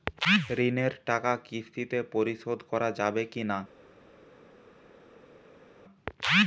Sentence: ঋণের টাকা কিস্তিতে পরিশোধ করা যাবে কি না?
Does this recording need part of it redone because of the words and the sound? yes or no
no